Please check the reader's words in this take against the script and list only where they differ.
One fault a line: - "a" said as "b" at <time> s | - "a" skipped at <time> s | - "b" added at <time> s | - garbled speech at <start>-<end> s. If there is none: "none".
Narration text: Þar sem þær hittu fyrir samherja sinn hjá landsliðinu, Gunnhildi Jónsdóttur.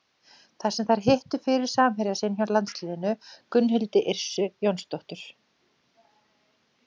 - "Yrsu" added at 4.1 s